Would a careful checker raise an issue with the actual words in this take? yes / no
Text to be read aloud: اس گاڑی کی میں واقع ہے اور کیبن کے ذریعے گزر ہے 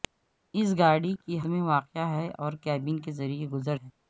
no